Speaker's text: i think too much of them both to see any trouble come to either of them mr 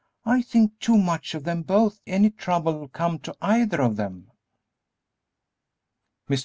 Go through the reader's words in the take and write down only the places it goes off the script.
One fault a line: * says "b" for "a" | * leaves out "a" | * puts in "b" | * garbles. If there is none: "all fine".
* leaves out "to see"